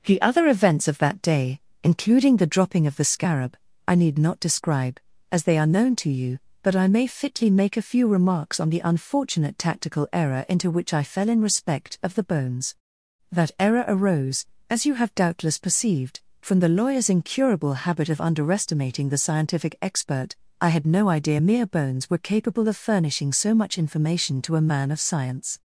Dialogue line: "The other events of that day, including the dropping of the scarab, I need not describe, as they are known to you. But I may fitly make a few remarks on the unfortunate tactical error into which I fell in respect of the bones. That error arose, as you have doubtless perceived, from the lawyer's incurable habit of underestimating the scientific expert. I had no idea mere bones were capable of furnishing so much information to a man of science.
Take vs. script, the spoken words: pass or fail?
pass